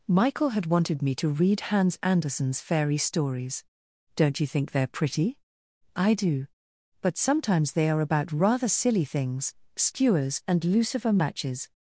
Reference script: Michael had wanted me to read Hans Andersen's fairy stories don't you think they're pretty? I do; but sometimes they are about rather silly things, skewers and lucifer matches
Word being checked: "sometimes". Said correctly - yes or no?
yes